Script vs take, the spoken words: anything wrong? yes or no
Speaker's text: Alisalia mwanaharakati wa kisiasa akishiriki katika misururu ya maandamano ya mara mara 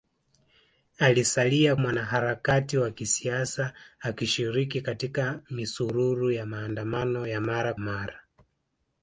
no